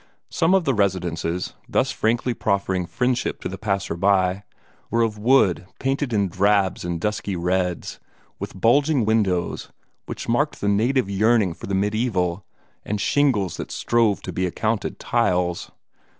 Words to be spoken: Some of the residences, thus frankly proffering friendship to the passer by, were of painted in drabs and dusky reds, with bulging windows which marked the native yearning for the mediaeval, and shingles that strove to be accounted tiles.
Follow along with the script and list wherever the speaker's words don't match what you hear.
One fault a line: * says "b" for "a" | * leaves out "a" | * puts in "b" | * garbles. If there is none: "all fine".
* puts in "wood"